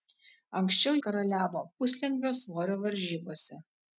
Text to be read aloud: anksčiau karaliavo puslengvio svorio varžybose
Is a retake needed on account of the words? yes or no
no